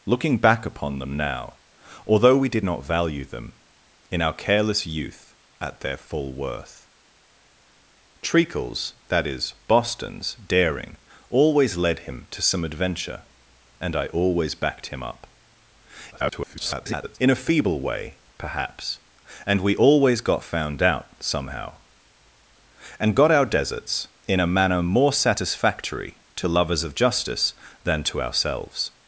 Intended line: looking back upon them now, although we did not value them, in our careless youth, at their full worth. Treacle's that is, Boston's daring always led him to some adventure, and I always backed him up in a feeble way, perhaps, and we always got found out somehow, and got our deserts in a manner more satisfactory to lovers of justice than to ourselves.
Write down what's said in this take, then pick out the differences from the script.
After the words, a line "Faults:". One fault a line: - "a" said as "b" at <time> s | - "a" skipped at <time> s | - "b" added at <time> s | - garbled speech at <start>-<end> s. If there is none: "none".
looking back upon them now, although we did not value them, in our careless youth, at their full worth. Treacle's that is, Boston's daring always led him to some adventure, and I always backed him up [garbled] in a feeble way, perhaps, and we always got found out somehow, and got our deserts in a manner more satisfactory to lovers of justice than to ourselves.
Faults:
- garbled speech at 16.1-17.2 s